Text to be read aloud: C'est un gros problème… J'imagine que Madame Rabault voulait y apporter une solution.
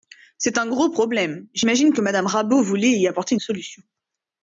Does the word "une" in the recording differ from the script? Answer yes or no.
yes